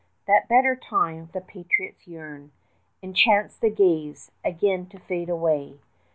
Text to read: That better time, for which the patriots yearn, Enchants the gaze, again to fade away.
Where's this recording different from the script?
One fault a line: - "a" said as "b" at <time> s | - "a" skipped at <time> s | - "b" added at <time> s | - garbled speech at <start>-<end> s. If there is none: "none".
- "for which" skipped at 1.3 s